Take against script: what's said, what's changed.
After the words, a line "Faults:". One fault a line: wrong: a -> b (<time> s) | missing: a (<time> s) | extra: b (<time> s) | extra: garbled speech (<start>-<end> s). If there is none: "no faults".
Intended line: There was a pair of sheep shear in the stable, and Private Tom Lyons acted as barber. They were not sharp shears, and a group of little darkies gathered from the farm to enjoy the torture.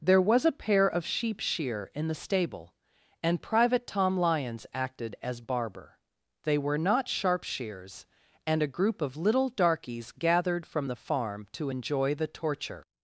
There was a pair of sheep shear in the stable, and Private Tom Lyons acted as barber. They were not sharp shears, and a group of little darkies gathered from the farm to enjoy the torture.
Faults:
no faults